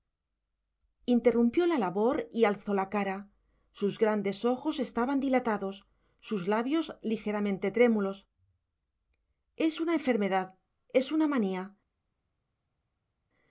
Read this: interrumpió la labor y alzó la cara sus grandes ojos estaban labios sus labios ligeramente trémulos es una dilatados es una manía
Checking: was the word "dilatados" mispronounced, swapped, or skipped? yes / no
yes